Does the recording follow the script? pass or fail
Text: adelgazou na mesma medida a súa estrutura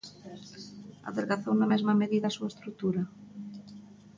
pass